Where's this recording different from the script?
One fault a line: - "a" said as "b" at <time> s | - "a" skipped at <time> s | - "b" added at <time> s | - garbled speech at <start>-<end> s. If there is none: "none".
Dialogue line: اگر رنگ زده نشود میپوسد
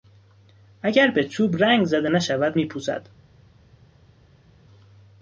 - "به چوب" added at 1.1 s